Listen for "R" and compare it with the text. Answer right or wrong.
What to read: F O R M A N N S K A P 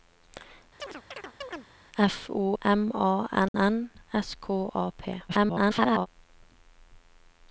wrong